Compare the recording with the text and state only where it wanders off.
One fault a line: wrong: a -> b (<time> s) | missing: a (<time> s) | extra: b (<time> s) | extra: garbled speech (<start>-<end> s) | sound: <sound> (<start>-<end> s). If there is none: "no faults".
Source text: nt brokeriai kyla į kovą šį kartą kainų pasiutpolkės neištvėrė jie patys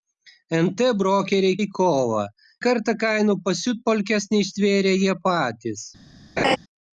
missing: kyla (1.6 s)
missing: šį (2.2 s)
sound: laugh (6.4-6.6 s)